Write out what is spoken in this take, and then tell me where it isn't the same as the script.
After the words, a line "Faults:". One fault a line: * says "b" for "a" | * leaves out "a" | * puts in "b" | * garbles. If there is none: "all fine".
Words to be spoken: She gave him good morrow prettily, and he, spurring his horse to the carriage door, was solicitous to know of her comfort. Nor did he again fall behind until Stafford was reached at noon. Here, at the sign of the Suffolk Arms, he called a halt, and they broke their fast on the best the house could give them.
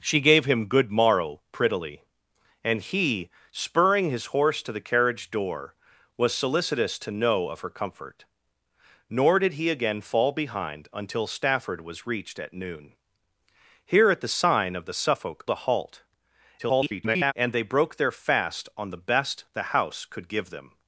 She gave him good morrow prettily, and he, spurring his horse to the carriage door, was solicitous to know of her comfort. Nor did he again fall behind until Stafford was reached at noon. Here, at the sign of the Suffolk A halt, [garbled] and they broke their fast on the best the house could give them.
Faults:
* leaves out "Arms he called"
* garbles